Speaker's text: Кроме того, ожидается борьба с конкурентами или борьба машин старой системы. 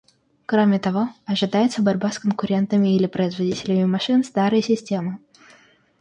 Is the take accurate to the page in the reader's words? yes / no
no